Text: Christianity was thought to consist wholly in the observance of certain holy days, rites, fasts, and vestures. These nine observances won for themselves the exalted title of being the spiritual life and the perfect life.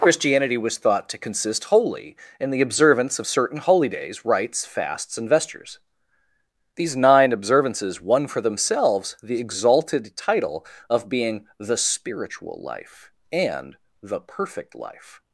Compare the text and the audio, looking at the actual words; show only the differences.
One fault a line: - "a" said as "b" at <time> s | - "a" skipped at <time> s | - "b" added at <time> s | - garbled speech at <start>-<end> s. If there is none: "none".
none